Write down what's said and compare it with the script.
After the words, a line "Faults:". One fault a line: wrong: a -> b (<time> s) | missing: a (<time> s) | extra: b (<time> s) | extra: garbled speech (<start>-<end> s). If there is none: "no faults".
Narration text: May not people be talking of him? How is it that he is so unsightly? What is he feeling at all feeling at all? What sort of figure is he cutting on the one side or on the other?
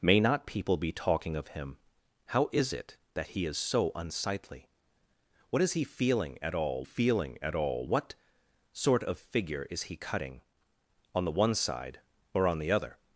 May not people be talking of him? How is it that he is so unsightly? What is he feeling at all feeling at all? What sort of figure is he cutting on the one side or on the other?
Faults:
no faults